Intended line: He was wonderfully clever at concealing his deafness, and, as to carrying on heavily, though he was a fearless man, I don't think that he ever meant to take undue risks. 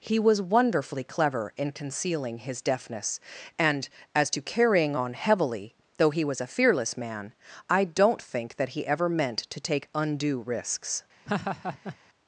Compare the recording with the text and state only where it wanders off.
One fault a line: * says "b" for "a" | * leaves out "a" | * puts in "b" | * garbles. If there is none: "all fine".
* says "in" for "at"